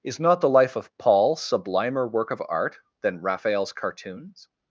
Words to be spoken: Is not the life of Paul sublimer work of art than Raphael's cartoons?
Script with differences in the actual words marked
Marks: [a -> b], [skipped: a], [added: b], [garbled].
Is not the life of Paul sublimer work of art than Raphael's cartoons?